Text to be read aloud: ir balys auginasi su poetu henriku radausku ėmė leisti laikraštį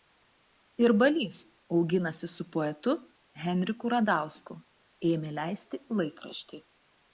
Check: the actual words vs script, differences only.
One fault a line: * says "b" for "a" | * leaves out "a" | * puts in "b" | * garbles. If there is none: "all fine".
all fine